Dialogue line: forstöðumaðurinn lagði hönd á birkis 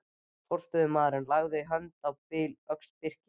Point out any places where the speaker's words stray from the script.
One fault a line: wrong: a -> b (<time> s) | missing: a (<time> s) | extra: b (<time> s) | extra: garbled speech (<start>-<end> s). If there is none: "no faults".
extra: öxl (2.8 s)